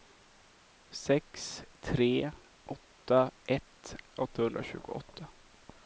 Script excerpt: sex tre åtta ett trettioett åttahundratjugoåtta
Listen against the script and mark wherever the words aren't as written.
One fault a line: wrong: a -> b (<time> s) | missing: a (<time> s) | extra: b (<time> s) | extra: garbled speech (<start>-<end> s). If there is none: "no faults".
missing: trettioett (3.9 s)